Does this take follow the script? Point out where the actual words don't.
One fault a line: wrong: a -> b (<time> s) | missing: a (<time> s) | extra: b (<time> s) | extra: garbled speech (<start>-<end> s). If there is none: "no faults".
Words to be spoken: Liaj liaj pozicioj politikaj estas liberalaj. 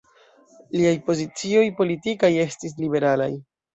missing: liaj (0.9 s)
wrong: estas -> estis (2.5 s)